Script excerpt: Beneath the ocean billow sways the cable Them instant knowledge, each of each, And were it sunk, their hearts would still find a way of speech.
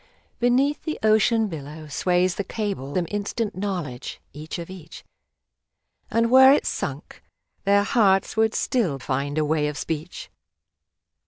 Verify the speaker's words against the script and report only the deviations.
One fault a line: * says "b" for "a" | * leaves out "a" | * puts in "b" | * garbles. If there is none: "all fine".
all fine